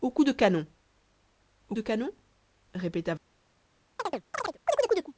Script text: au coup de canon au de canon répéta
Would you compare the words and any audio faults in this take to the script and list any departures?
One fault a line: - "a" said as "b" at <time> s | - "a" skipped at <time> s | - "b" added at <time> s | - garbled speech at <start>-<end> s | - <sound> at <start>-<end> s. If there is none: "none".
- chirp at 4.0-5.1 s